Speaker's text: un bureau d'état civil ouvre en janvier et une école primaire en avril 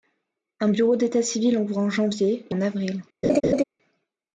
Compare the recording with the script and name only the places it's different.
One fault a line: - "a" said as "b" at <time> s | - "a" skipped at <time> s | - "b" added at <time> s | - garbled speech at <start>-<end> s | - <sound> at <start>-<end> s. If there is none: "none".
- "une école primaire" skipped at 2.6 s
- laugh at 3.2-3.6 s